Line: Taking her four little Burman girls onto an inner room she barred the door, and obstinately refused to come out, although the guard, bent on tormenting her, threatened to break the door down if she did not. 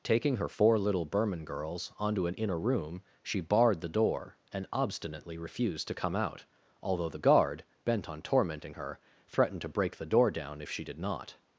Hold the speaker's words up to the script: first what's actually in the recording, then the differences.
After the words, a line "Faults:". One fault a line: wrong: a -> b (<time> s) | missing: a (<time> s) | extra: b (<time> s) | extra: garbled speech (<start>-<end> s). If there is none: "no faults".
Taking her four little Burman girls onto an inner room she barred the door, and obstinately refused to come out, although the guard, bent on tormenting her, threatened to break the door down if she did not.
Faults:
no faults